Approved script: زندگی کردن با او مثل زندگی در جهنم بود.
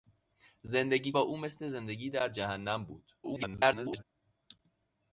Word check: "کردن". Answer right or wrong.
wrong